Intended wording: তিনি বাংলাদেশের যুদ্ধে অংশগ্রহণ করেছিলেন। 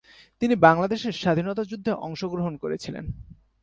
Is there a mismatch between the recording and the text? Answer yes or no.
yes